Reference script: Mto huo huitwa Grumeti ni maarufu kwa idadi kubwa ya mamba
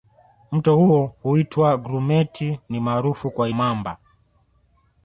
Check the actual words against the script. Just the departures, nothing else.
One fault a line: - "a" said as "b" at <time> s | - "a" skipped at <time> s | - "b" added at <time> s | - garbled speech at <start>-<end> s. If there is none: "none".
- "idadi kubwa ya" skipped at 3.5 s